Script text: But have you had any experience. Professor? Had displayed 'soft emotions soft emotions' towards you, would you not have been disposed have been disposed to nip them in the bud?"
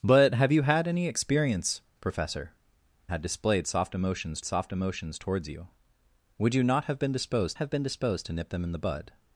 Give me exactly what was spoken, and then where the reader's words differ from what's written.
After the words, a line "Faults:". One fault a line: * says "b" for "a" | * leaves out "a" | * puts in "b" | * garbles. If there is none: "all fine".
But have you had any experience. Professor? Had displayed 'soft emotions soft emotions' towards you, would you not have been disposed have been disposed to nip them in the bud?"
Faults:
all fine